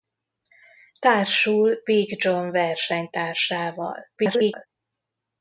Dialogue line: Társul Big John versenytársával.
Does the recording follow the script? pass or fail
fail